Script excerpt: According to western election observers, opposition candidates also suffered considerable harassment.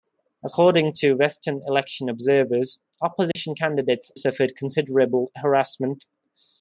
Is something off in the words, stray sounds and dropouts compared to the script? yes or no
yes